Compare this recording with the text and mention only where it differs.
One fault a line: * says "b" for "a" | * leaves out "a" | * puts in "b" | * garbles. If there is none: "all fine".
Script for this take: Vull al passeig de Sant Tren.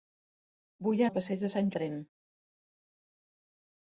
all fine